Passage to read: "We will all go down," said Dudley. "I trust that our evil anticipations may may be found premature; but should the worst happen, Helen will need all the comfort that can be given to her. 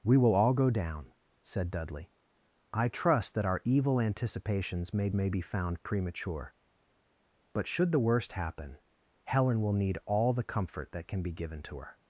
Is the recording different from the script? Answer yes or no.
no